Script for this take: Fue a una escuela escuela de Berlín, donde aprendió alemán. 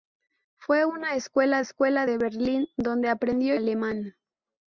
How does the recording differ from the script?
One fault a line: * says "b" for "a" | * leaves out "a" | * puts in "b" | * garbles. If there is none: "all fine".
all fine